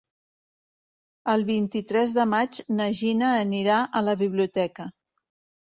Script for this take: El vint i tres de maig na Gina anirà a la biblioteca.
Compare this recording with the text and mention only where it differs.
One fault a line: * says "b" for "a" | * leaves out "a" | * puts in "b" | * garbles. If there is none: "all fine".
all fine